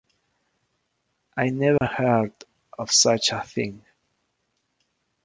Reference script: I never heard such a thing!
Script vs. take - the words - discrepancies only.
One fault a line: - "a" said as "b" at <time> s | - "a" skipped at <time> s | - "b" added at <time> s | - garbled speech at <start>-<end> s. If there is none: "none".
- "of" added at 2.8 s